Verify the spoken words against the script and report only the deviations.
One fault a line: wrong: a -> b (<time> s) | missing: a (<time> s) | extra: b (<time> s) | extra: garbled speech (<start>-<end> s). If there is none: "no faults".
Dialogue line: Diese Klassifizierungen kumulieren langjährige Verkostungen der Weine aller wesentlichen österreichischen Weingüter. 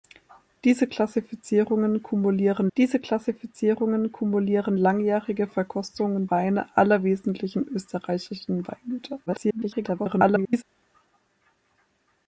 extra: diese Klassifizierungen kumulieren (2.8 s)
missing: der (6.3 s)
extra: garbled speech (9.3-10.6 s)